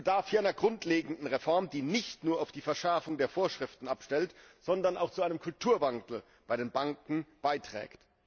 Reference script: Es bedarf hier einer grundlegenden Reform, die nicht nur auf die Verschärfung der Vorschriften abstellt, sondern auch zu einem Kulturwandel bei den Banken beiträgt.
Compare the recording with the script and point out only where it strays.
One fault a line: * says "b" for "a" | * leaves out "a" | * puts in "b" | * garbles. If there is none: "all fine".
all fine